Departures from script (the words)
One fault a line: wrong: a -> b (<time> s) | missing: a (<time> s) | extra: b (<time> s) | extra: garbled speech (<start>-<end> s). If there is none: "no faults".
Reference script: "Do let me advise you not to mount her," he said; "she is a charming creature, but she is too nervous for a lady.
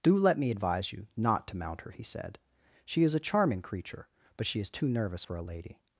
no faults